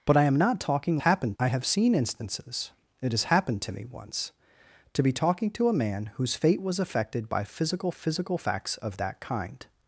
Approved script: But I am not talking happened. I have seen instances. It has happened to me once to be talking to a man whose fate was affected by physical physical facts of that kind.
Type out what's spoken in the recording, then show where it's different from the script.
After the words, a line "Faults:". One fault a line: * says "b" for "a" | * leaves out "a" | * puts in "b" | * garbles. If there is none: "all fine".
But I am not talking happened. I have seen instances. It has happened to me once to be talking to a man whose fate was affected by physical physical facts of that kind.
Faults:
all fine